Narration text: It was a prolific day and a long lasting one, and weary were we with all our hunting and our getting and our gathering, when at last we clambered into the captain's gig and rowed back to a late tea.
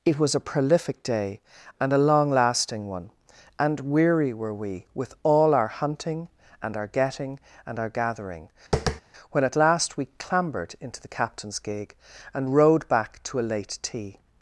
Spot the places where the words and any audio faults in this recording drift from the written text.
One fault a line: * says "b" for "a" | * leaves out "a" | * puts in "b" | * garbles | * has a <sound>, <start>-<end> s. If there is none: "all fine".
* has a tap, 8.7-9.0 s